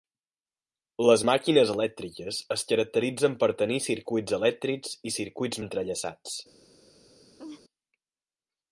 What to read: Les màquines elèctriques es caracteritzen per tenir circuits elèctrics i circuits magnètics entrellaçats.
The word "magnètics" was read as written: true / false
false